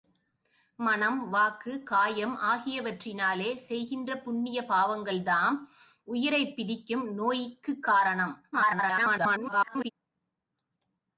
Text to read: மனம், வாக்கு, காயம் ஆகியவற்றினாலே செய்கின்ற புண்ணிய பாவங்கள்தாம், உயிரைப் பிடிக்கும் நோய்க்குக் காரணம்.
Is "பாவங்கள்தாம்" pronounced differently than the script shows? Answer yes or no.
no